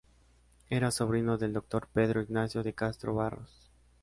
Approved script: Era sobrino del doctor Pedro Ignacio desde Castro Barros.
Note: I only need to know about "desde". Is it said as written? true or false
false